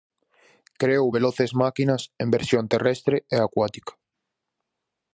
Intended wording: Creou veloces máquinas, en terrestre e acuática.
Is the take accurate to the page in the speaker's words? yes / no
no